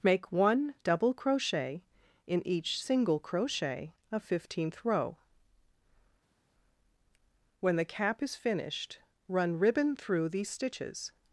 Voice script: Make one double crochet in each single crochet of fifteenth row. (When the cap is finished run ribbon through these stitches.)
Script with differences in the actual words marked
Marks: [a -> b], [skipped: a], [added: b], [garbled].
Make one double crochet in each single crochet of fifteenth row. (When the cap is finished run ribbon through these stitches.)